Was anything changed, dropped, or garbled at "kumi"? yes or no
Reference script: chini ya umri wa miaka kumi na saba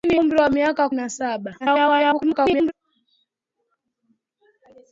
yes